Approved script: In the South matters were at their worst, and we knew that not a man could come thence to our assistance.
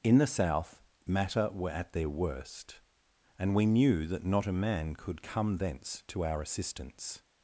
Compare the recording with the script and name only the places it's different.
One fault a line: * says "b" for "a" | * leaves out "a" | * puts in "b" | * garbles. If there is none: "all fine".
* says "matter" for "matters"